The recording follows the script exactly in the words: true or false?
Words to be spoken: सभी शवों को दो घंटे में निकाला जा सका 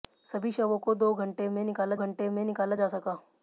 false